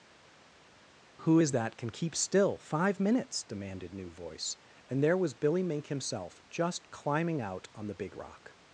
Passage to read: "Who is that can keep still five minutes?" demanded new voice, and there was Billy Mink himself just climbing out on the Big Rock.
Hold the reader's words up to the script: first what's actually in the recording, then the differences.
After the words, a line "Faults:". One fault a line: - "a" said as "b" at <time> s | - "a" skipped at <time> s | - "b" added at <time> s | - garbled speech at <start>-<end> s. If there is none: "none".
"Who is that can keep still five minutes?" demanded new voice, and there was Billy Mink himself just climbing out on the Big Rock.
Faults:
none